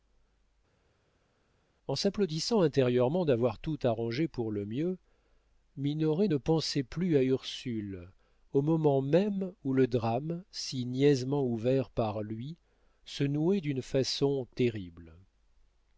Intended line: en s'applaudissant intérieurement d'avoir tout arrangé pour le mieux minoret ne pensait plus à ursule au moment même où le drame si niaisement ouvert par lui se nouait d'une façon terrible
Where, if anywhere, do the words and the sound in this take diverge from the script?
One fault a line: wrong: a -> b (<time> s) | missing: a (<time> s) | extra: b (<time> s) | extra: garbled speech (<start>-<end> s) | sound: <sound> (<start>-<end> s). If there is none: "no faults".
no faults